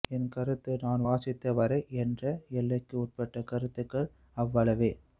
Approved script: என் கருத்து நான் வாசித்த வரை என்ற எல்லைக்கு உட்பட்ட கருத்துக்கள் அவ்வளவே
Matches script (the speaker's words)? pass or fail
pass